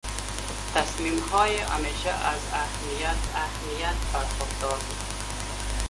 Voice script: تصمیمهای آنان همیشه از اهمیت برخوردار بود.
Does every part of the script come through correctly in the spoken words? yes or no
no